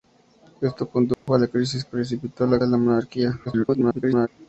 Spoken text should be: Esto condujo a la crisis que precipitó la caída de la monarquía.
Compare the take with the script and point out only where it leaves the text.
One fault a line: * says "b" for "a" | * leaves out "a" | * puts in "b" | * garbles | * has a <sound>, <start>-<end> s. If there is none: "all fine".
* has a dropout, 1.1-1.3 s
* leaves out "que"
* leaves out "caída"
* garbles